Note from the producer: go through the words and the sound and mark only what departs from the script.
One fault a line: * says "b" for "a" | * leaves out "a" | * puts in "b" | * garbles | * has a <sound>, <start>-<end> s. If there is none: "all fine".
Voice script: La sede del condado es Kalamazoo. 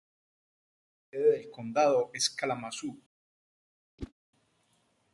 * has a whoosh, 4.0-4.1 s